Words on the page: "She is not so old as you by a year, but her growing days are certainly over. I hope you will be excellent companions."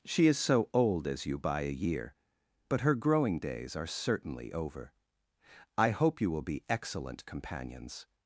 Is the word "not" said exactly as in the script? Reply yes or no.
no